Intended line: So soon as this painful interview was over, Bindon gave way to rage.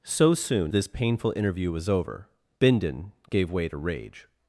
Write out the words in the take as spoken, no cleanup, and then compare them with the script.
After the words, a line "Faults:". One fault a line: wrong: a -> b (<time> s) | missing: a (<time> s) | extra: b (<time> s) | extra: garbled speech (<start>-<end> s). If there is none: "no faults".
So soon this painful interview was over, Bindon gave way to rage.
Faults:
missing: as (0.7 s)